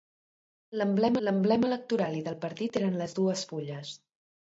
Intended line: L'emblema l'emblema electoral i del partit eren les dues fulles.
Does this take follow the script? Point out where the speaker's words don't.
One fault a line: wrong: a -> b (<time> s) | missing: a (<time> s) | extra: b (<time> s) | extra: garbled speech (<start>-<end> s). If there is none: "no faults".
no faults